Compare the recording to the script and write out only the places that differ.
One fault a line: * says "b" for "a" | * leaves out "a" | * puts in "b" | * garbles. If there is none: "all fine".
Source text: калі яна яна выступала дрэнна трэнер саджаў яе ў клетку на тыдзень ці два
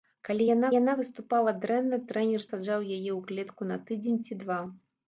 all fine